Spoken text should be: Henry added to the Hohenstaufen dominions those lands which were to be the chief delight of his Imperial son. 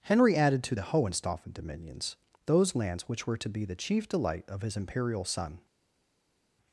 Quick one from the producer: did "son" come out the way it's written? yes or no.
yes